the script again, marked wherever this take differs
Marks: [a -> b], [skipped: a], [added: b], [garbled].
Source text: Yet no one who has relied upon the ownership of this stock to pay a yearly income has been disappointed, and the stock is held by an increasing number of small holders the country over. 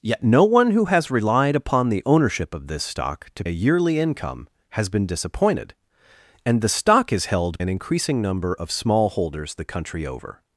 Yet no one who has relied upon the ownership of this stock to [skipped: pay] a yearly income has been disappointed, and the stock is held [skipped: by] an increasing number of small holders the country over.